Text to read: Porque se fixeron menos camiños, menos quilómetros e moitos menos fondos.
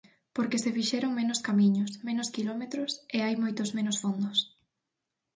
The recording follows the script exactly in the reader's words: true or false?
false